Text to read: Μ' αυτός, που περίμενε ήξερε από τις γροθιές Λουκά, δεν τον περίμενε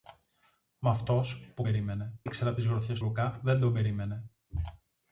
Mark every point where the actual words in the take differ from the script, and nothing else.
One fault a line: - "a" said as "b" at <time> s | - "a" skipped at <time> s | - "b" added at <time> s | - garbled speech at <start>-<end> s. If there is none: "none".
none